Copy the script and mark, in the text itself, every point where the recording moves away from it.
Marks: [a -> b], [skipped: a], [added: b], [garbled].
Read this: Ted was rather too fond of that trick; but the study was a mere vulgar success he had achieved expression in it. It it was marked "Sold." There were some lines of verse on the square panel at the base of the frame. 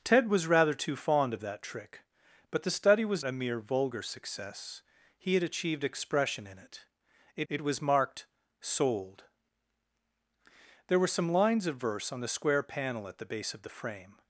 Ted was rather too fond of that trick; but the study was a mere vulgar success he had achieved expression in it. It it was marked "Sold." There were some lines of verse on the square panel at the base of the frame.